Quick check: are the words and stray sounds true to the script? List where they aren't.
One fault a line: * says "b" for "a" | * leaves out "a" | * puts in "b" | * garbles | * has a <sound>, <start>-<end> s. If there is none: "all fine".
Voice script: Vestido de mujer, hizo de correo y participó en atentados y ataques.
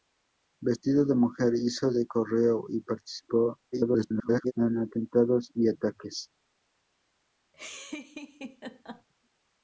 * garbles
* has a laugh, 7.5-9.1 s